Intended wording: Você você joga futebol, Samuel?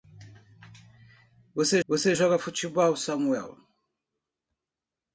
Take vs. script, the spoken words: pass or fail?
pass